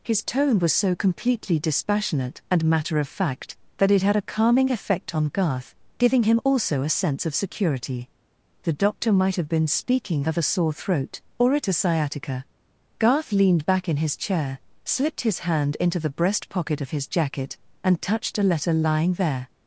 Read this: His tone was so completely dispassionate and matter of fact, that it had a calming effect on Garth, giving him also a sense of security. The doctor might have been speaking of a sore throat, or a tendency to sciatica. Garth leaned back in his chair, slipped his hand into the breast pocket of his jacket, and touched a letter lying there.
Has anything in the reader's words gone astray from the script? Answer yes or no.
yes